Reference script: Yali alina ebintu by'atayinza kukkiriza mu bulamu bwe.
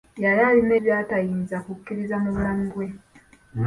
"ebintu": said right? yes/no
no